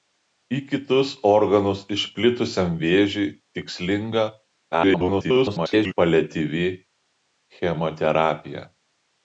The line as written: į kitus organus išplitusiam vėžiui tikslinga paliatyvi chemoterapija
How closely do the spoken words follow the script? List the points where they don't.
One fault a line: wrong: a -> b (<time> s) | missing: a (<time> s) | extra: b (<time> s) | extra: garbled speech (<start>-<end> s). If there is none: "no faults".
extra: garbled speech (4.7-5.9 s)